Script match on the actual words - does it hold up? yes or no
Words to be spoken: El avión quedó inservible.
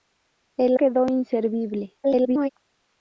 no